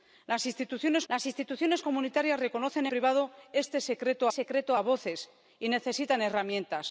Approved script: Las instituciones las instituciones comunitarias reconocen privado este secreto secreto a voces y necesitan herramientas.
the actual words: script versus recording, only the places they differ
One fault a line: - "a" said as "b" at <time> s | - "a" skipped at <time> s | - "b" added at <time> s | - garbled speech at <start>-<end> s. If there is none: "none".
none